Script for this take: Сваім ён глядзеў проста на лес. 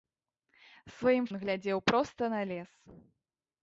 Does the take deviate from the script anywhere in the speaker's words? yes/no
no